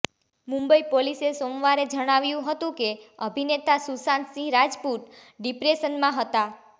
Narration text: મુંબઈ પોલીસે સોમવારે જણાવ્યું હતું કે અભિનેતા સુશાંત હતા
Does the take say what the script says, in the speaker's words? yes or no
no